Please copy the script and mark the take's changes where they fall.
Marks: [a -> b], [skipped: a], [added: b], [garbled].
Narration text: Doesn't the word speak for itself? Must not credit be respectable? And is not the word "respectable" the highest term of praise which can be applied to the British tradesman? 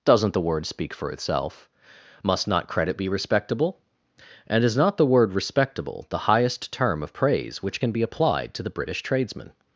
Doesn't the word speak for itself? Must not credit be respectable? And is not the word "respectable" the highest term of praise which can be applied to the British tradesman?